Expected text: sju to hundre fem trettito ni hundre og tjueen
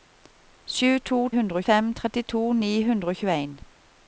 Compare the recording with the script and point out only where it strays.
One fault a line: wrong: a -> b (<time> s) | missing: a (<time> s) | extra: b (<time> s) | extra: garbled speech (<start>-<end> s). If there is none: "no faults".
no faults